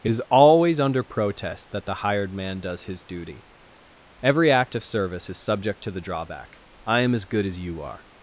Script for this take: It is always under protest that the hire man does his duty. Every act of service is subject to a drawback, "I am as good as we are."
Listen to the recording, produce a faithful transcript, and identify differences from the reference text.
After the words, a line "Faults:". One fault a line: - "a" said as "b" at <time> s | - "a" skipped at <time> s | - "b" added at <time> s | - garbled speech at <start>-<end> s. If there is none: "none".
It is always under protest that the hired man does his duty. Every act of service is subject to the drawback, "I am as good as you are."
Faults:
- "hire" said as "hired" at 1.9 s
- "a" said as "the" at 5.9 s
- "we" said as "you" at 7.6 s